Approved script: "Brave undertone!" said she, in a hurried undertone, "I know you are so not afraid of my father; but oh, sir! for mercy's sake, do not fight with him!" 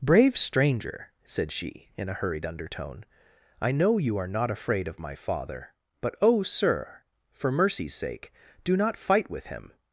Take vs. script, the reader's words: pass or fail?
fail